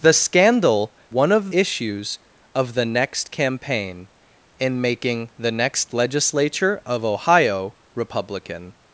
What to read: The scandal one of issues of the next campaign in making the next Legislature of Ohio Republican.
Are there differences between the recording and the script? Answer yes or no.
no